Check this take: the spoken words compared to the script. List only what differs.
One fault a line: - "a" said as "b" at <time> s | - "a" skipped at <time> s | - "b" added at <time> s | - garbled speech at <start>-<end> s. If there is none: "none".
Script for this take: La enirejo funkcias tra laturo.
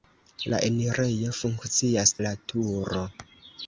- "tra" skipped at 2.1 s